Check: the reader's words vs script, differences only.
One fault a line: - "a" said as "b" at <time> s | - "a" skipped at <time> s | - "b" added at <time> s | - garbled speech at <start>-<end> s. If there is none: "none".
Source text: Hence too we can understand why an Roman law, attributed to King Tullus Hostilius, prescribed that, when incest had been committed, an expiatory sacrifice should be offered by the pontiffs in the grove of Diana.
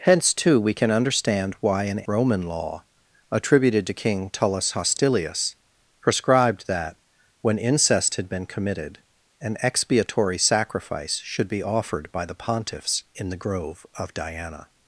none